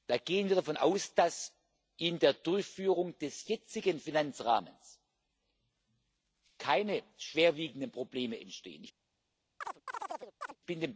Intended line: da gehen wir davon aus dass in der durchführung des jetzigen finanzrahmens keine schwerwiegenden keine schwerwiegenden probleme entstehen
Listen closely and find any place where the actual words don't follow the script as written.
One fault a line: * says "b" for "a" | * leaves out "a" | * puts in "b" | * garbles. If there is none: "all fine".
* leaves out "keine schwerwiegenden"